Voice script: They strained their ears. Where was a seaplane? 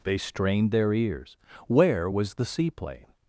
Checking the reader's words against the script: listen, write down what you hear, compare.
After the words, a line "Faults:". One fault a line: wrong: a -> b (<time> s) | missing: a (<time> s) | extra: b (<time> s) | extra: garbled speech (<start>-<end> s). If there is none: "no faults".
They strained their ears. Where was the seaplane?
Faults:
wrong: a -> the (2.3 s)